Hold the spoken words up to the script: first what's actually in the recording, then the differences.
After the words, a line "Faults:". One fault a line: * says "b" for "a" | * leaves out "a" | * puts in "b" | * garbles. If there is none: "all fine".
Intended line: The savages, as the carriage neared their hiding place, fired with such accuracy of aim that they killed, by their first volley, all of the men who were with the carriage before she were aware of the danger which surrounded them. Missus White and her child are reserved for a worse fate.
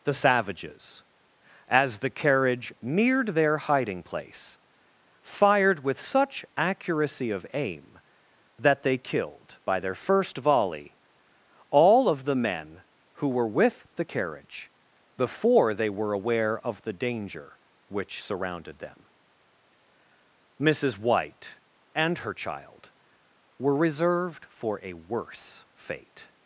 The savages, as the carriage neared their hiding place, fired with such accuracy of aim that they killed, by their first volley, all of the men who were with the carriage before they were aware of the danger which surrounded them. Missus White and her child were reserved for a worse fate.
Faults:
* says "they" for "she"
* says "were" for "are"